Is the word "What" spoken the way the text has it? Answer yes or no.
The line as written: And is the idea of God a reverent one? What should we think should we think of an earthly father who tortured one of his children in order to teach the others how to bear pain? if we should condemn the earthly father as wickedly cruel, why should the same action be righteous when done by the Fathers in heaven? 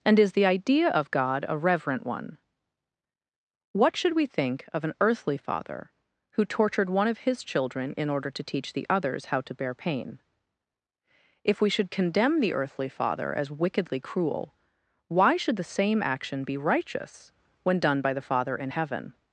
yes